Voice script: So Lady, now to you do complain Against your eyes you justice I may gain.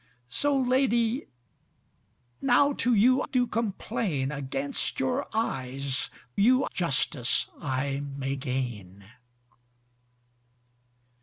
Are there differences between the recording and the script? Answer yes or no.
no